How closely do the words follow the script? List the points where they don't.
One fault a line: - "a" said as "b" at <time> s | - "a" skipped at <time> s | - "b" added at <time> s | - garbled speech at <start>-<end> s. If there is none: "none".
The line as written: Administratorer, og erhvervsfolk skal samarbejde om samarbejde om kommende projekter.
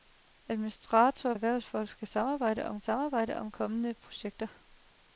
none